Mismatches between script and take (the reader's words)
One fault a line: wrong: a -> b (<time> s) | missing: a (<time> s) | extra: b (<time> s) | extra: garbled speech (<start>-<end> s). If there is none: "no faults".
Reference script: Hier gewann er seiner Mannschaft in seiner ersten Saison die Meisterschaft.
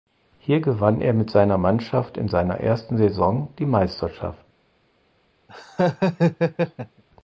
extra: mit (1.1 s)